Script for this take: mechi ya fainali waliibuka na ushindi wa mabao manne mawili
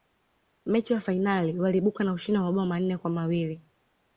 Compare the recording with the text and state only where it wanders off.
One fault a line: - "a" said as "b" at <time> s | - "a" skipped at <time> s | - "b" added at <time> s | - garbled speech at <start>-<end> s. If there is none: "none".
- "kwa" added at 3.0 s